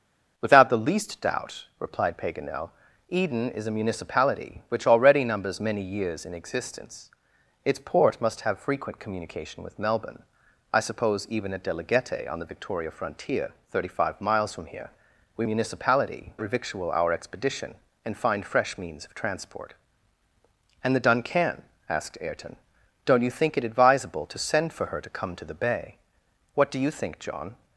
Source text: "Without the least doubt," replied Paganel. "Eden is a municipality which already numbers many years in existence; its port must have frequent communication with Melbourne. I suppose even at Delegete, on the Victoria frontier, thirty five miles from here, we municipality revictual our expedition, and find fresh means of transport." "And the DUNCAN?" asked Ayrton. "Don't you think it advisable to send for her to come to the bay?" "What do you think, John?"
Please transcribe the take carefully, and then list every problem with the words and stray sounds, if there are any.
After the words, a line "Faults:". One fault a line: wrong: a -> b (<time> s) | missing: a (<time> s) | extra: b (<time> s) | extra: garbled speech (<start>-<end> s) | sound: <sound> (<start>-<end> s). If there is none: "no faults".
"Without the least doubt," replied Paganel. "Eden is a municipality which already numbers many years in existence; its port must have frequent communication with Melbourne. I suppose even at Delegete, on the Victoria frontier, thirty five miles from here, we municipality revictual our expedition, and find fresh means of transport." "And the DUNCAN?" asked Ayrton. "Don't you think it advisable to send for her to come to the bay?" "What do you think, John?"
Faults:
no faults